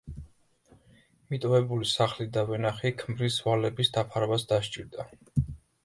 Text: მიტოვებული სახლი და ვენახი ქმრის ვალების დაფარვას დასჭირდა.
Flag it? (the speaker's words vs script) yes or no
no